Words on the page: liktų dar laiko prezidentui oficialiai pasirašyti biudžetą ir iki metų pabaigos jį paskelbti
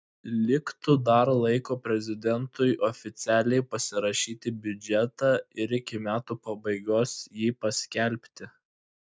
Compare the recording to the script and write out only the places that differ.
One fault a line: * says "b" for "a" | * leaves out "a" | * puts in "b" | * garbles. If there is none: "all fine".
all fine